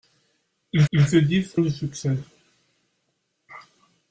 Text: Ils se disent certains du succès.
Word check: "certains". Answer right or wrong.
wrong